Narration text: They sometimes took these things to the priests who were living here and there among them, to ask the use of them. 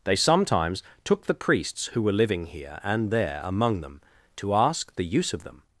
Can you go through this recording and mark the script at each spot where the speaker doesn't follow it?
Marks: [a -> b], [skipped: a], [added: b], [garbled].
They sometimes took [skipped: these things to] the priests who were living here and there among them, to ask the use of them.